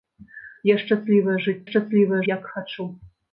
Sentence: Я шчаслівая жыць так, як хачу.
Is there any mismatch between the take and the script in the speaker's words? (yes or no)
yes